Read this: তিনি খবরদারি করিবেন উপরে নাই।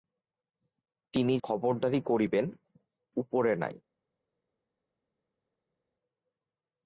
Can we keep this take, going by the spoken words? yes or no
yes